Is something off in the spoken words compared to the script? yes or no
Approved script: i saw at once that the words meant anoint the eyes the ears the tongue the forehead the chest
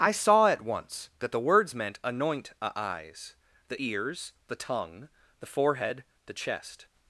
yes